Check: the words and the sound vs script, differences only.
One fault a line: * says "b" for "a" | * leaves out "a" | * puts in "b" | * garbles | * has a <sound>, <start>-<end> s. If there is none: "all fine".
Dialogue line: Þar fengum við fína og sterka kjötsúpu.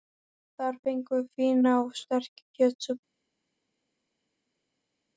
all fine